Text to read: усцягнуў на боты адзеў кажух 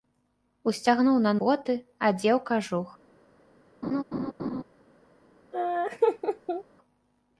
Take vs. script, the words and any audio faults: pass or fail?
fail